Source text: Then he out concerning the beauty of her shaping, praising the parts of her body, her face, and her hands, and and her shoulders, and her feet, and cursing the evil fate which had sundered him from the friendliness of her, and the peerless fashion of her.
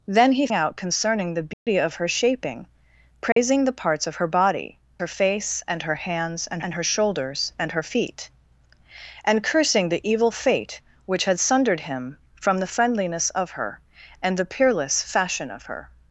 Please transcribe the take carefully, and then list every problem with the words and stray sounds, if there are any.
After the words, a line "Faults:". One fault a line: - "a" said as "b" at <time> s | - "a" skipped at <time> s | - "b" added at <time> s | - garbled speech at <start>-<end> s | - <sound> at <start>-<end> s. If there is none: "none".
Then he out concerning the beauty of her shaping, praising the parts of her body, her face, and her hands, and and her shoulders, and her feet, and cursing the evil fate which had sundered him from the friendliness of her, and the peerless fashion of her.
Faults:
- dropout at 1.5-1.7 s
- dropout at 3.3-3.4 s